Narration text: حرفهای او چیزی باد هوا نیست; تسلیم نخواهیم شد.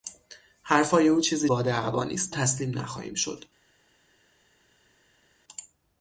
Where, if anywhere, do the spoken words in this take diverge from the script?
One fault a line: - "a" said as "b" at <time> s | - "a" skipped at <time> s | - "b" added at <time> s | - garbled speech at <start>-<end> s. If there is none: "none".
none